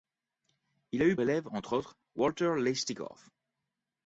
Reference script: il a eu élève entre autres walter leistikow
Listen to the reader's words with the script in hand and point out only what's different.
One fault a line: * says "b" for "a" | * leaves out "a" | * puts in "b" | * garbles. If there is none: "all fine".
all fine